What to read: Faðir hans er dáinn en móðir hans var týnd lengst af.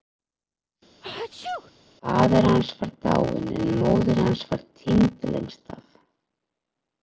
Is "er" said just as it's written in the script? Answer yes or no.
no